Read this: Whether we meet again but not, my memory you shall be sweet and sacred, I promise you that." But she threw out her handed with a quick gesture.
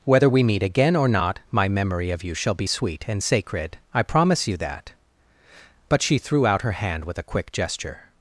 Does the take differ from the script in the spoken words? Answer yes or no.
yes